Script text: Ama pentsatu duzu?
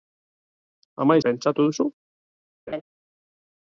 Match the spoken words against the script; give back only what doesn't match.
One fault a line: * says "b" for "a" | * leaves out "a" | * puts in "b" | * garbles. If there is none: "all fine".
all fine